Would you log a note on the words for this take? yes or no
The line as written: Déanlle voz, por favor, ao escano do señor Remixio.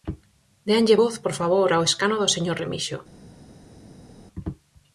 no